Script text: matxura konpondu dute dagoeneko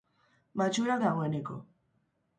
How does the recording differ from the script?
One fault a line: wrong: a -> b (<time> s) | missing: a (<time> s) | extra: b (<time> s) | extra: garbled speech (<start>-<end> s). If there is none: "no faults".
missing: konpondu dute (0.9 s)